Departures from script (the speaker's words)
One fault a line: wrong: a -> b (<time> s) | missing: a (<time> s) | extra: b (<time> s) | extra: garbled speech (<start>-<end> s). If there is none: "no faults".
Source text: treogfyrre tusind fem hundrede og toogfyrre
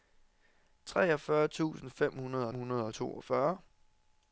extra: hundrede (2.5 s)